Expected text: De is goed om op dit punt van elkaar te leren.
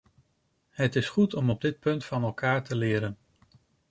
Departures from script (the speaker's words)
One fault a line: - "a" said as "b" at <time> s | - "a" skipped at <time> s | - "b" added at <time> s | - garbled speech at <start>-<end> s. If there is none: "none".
- "De" said as "Het" at 0.7 s